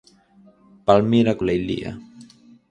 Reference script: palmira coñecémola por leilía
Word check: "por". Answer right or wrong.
wrong